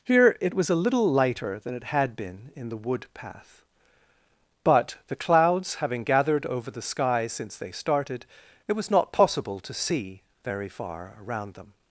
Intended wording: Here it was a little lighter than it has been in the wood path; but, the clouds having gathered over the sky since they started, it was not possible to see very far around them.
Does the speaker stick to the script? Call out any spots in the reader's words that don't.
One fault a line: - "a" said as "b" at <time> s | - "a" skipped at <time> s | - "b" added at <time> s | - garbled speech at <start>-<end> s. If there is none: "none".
- "has" said as "had" at 1.9 s